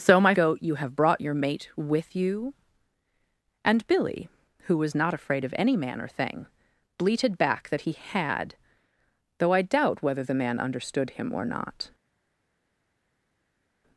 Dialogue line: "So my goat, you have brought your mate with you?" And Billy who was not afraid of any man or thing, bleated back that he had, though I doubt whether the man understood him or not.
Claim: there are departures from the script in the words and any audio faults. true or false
false